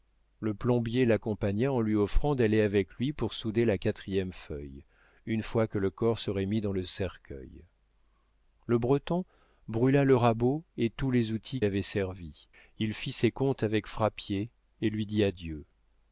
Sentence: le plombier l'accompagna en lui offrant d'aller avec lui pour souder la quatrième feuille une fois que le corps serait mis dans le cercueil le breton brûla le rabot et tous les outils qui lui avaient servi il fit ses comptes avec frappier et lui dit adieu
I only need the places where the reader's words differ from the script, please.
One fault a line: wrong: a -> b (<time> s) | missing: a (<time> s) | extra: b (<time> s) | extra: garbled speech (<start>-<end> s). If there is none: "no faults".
missing: qui lui (11.6 s)